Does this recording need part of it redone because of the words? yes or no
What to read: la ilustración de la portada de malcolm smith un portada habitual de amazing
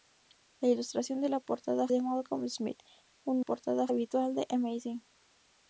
no